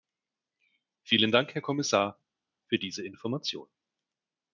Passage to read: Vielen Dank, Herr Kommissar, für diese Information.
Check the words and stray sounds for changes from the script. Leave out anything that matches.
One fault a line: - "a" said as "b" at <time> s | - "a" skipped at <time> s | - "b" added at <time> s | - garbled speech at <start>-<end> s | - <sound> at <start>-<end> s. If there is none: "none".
none